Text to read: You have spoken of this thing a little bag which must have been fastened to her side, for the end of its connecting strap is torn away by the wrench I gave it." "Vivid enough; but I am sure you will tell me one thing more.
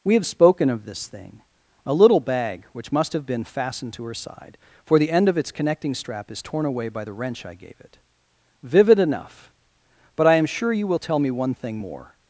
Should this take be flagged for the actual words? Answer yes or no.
yes